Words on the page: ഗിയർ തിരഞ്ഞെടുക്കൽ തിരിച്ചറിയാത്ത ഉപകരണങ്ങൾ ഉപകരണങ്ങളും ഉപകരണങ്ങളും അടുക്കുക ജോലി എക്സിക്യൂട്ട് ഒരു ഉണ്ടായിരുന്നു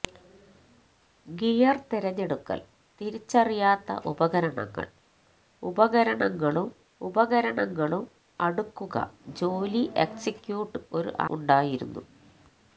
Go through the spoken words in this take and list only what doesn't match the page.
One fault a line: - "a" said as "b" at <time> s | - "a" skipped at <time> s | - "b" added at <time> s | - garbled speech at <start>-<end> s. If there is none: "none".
none